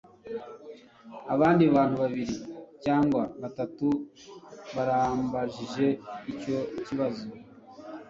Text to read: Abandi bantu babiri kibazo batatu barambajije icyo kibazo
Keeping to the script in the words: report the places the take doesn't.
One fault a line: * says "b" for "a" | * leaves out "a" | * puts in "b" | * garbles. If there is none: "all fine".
* says "cyangwa" for "kibazo"